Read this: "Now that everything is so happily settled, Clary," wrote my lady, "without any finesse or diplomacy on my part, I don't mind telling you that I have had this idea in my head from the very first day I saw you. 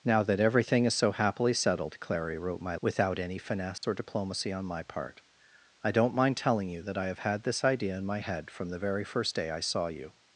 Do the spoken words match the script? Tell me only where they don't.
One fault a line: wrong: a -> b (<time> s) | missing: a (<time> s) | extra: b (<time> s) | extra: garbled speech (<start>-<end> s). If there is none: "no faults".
missing: lady (2.8 s)